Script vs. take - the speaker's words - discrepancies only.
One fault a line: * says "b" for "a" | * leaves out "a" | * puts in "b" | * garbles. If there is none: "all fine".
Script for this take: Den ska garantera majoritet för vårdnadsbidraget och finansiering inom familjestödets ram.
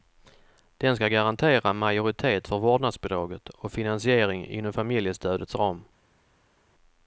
all fine